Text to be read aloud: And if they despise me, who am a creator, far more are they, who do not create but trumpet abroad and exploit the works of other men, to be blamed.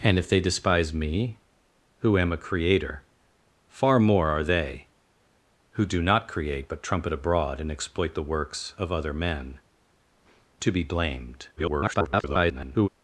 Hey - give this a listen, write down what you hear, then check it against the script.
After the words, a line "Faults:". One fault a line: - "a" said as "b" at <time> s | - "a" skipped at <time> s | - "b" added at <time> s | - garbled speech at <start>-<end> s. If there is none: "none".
And if they despise me, who am a creator, far more are they, who do not create but trumpet abroad and exploit the works of other men, to be blamed. [garbled]
Faults:
- garbled speech at 11.6-12.9 s